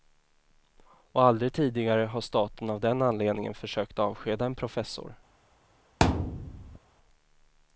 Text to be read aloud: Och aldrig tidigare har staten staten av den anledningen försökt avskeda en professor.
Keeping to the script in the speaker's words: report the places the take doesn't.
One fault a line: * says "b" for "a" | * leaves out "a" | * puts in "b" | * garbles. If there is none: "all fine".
* leaves out "staten"